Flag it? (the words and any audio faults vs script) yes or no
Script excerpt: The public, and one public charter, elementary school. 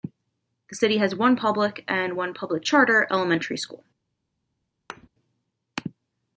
yes